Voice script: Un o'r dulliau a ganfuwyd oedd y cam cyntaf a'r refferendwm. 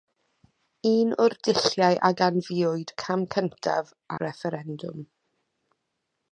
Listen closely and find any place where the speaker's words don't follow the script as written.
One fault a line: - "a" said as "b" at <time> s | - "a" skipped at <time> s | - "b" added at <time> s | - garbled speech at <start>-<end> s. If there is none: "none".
- "oedd" skipped at 3.0 s
- "a'r" skipped at 3.9 s